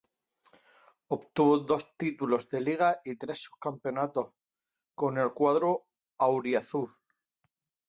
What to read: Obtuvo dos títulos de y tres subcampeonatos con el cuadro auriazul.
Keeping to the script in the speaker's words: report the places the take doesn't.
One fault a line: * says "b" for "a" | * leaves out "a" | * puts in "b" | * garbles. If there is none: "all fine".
* puts in "liga"